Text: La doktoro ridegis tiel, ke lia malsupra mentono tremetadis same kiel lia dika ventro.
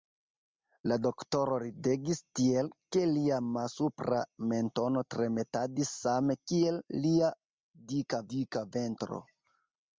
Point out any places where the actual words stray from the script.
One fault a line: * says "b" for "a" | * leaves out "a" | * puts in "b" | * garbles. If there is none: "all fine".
* puts in "dika"